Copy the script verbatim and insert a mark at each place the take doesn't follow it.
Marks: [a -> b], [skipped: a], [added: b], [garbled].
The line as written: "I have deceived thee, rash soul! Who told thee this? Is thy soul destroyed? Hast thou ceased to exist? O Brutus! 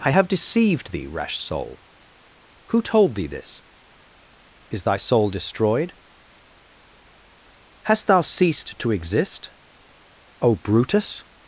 "I have deceived thee, rash soul! Who told thee this? Is thy soul destroyed? Hast thou ceased to exist? O Brutus!